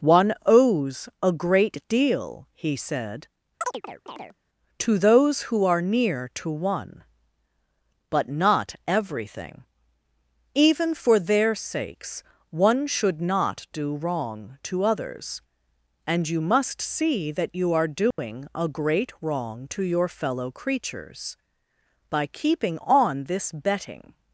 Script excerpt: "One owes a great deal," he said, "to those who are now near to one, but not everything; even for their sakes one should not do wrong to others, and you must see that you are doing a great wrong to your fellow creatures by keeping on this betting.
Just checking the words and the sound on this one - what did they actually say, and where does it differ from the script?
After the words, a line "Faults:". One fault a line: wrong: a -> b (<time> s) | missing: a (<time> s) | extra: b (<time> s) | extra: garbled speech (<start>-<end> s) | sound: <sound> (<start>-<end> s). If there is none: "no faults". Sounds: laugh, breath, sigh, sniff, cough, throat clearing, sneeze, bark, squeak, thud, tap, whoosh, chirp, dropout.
"One owes a great deal," he said, "to those who are near to one, but not everything; even for their sakes one should not do wrong to others, and you must see that you are doing a great wrong to your fellow creatures by keeping on this betting.
Faults:
sound: chirp (3.6-4.4 s)
missing: now (5.8 s)
sound: dropout (18.1-18.2 s)